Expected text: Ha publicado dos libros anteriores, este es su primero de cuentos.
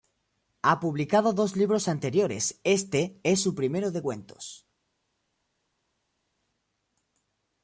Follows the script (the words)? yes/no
yes